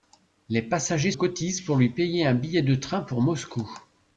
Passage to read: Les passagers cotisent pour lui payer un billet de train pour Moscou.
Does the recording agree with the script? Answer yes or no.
yes